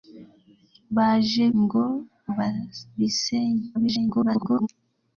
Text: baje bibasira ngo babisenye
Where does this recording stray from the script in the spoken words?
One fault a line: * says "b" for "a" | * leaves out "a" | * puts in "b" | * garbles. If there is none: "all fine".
* leaves out "bibasira"
* garbles